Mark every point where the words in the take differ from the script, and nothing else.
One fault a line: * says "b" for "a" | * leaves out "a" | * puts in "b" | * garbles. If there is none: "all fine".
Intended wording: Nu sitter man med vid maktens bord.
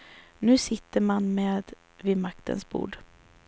all fine